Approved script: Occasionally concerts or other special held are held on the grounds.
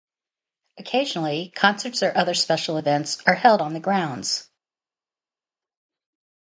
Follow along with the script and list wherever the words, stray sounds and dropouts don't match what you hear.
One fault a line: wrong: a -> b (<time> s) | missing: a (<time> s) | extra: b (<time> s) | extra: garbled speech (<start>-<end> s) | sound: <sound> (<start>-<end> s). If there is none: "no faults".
wrong: held -> events (2.8 s)